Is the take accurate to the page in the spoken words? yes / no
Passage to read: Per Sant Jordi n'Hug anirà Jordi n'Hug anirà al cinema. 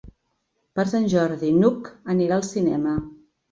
no